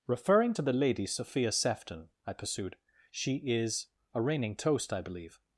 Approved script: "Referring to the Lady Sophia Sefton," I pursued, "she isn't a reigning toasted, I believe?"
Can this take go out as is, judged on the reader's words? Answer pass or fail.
fail